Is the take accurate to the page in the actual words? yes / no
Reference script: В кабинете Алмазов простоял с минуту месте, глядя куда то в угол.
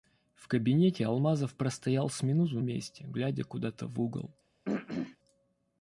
yes